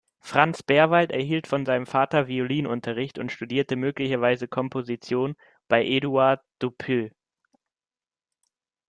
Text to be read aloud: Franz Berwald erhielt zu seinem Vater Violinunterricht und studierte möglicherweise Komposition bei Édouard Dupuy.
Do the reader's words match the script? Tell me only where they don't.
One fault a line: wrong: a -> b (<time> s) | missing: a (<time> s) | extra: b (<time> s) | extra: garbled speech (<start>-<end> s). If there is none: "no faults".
wrong: zu -> von (1.4 s)